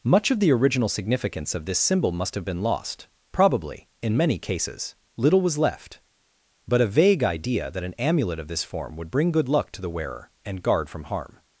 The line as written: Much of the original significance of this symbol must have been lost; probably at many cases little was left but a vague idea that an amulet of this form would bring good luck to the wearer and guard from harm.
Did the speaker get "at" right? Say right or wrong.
wrong